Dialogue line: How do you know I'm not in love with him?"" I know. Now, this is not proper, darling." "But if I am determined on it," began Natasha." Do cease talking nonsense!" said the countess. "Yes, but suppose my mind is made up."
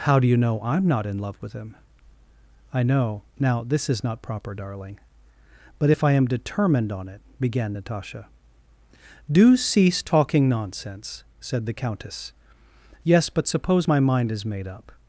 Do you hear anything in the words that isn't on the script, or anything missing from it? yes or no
no